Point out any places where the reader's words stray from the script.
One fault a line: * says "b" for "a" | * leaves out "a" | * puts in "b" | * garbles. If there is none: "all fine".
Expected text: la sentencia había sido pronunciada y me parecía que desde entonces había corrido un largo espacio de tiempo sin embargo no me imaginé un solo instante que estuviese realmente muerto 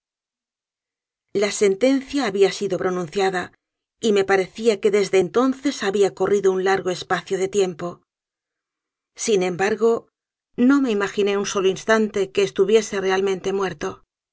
all fine